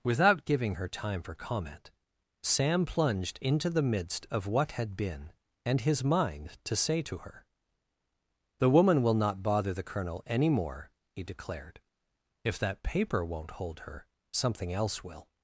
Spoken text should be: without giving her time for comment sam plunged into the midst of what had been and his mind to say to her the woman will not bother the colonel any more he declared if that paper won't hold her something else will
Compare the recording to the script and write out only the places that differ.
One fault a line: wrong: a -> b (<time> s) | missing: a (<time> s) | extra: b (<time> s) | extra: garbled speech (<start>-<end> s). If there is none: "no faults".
no faults